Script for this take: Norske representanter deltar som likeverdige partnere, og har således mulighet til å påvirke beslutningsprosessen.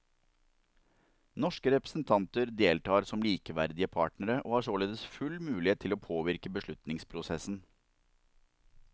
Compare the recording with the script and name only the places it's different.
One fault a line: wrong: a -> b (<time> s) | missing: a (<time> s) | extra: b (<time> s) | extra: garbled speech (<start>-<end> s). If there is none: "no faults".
extra: full (5.1 s)